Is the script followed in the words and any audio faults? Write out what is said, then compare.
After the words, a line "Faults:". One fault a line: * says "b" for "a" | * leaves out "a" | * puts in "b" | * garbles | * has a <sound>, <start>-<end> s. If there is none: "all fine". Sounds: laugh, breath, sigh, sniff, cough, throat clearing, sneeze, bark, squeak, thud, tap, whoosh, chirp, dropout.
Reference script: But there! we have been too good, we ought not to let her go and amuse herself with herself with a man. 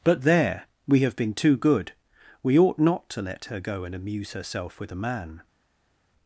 But there! we have been too good, we ought not to let her go and amuse herself with a man.
Faults:
* leaves out "herself with"